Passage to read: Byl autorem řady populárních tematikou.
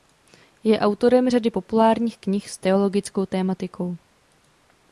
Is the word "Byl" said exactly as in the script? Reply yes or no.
no